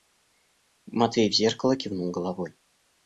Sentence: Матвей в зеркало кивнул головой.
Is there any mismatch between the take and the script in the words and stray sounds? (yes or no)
no